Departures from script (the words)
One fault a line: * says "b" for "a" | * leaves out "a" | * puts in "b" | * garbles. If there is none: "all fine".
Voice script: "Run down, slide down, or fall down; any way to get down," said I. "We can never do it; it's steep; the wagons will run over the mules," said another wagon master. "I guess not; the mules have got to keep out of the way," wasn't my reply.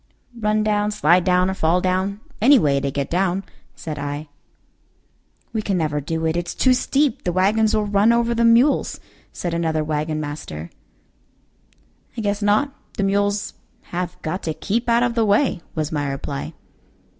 * puts in "too"
* says "was" for "wasn't"